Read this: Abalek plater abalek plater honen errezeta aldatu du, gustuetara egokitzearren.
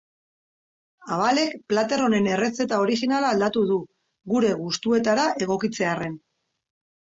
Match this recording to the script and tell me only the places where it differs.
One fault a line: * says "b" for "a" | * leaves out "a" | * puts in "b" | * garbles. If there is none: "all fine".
* leaves out "abalek plater"
* puts in "originala"
* puts in "gure"